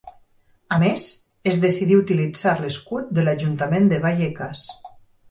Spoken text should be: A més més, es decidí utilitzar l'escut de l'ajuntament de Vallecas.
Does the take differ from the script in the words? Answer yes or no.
yes